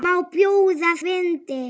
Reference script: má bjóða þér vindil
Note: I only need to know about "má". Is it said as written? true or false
true